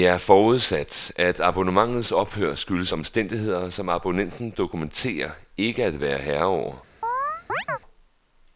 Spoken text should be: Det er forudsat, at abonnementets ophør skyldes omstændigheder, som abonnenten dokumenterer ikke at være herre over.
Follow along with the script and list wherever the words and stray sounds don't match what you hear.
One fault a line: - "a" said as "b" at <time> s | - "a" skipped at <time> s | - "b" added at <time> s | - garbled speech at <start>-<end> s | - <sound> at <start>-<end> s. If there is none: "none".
- chirp at 7.0-7.8 s